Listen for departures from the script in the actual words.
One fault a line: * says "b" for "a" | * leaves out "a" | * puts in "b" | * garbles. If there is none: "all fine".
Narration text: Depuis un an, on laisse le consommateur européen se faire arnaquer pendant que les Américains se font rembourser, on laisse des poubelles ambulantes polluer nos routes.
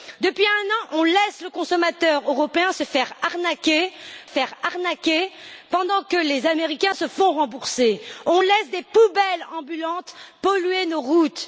* puts in "faire arnaquer"